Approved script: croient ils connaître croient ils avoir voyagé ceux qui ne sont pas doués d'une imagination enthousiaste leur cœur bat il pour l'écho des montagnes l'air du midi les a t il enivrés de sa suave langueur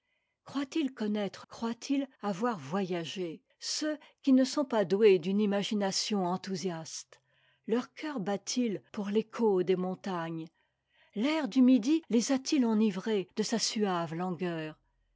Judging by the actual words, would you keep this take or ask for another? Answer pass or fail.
pass